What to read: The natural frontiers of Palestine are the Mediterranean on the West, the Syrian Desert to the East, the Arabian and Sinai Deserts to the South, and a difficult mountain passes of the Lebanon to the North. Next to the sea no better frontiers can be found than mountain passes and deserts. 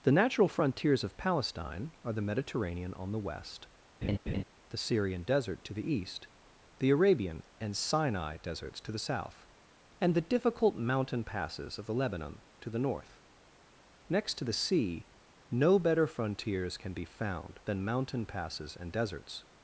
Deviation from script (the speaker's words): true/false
true